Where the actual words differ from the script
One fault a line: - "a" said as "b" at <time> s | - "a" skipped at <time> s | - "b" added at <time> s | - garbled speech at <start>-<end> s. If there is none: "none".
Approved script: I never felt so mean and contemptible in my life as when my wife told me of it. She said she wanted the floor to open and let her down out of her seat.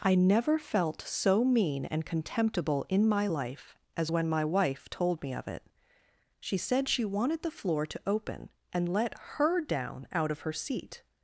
none